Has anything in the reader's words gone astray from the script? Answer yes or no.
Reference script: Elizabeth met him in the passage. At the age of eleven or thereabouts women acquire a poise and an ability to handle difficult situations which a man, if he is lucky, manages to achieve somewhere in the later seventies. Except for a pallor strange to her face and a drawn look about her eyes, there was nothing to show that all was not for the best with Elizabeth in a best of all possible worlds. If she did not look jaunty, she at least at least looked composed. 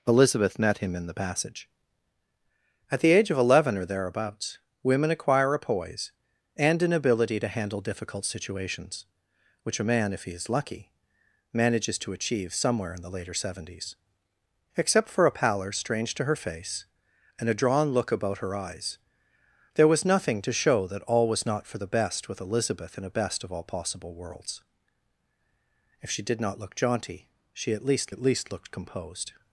no